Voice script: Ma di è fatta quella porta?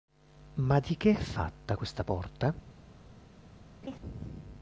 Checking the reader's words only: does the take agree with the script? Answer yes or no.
no